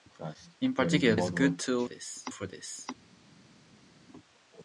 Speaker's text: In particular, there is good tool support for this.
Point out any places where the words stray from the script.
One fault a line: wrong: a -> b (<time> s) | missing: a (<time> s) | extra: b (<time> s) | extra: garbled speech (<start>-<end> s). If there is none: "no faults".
missing: there (1.2 s)
wrong: support -> this (1.8 s)